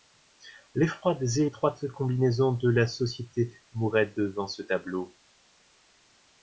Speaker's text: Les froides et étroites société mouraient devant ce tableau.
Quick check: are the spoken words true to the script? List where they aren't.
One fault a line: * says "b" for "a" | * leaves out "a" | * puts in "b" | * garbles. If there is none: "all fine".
* puts in "combinaisons de la"